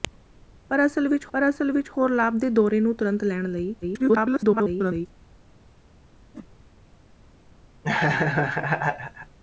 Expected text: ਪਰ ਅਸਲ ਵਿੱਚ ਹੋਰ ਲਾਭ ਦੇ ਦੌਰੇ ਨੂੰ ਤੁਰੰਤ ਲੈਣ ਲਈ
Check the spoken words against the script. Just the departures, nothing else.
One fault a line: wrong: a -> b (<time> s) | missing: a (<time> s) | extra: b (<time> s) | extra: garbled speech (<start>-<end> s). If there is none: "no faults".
extra: ਪਰ ਅਸਲ ਵਿੱਚ (1.3 s)
extra: garbled speech (3.8-5.1 s)